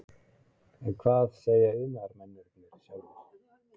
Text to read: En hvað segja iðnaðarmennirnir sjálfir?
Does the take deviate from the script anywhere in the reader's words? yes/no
no